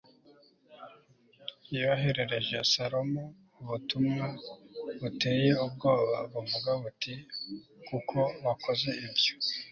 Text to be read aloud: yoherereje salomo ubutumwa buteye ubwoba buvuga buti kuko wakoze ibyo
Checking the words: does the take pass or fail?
pass